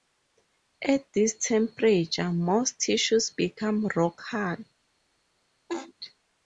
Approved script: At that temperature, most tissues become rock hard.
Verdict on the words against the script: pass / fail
fail